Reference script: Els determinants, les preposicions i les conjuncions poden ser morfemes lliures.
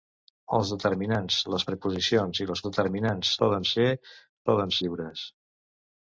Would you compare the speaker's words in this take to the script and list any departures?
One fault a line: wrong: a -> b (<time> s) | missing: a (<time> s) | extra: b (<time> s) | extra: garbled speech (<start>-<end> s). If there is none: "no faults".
wrong: conjuncions -> determinants (2.7 s)
wrong: morfemes -> poden (4.5 s)